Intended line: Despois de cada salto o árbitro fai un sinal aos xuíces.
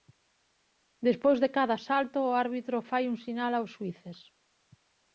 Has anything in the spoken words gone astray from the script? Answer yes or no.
no